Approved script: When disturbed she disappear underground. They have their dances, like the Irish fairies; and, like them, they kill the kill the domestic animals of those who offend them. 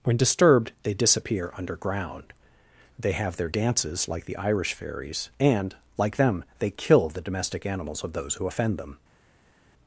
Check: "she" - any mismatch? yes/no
yes